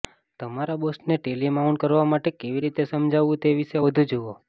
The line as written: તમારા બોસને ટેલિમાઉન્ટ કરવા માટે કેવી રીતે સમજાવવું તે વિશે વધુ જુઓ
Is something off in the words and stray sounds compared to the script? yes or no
no